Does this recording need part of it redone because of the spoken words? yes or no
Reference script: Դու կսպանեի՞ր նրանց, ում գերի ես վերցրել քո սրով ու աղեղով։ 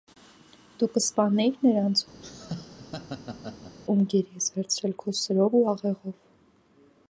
no